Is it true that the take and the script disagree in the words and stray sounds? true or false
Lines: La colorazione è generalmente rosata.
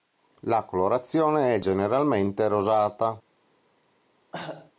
true